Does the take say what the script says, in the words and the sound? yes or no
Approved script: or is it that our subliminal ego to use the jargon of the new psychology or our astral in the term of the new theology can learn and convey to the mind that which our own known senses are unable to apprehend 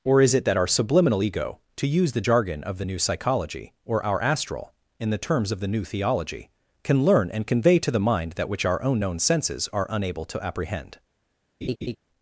no